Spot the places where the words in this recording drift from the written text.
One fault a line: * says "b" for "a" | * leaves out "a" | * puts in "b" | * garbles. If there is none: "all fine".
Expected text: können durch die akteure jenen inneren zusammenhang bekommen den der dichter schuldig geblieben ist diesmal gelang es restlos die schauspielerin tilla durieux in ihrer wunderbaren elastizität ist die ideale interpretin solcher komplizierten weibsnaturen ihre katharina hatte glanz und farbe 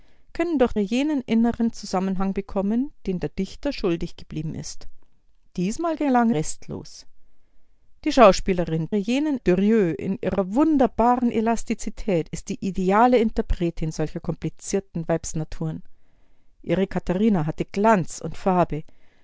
* leaves out "die akteure"
* leaves out "es"
* says "jenen" for "tilla"